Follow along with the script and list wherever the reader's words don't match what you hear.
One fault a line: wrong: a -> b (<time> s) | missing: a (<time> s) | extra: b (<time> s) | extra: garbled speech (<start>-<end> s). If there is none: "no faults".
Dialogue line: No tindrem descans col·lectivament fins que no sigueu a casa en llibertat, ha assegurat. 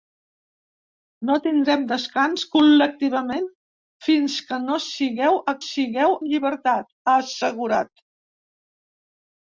wrong: casa -> sigueu (5.6 s)